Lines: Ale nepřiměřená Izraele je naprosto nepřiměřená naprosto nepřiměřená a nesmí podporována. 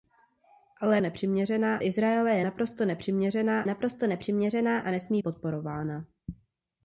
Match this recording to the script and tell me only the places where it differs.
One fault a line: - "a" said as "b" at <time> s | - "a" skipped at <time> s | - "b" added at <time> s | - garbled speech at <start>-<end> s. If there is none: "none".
none